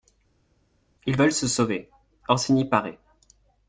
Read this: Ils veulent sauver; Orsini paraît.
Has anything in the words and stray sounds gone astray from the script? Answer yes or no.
yes